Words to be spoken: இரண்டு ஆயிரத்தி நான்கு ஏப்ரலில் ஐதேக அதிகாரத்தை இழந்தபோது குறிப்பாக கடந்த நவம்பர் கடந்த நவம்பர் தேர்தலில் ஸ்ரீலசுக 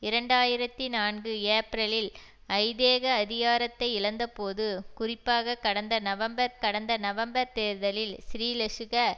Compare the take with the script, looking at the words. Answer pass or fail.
pass